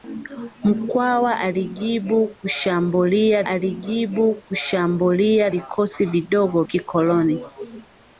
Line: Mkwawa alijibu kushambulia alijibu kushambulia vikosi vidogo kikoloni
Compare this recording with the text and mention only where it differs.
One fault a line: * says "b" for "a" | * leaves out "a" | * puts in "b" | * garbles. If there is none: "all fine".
all fine